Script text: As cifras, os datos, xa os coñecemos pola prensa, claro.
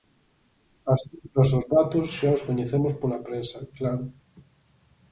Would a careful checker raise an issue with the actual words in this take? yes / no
no